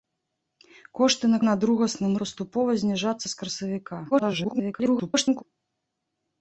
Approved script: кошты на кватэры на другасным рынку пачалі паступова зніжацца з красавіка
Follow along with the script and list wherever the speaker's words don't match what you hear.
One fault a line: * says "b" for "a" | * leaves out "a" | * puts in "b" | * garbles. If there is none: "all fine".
* leaves out "кватэры"
* leaves out "рынку пачалі"
* garbles